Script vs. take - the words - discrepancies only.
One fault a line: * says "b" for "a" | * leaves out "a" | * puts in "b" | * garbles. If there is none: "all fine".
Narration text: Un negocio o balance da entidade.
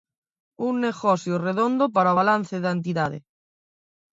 * puts in "redondo para"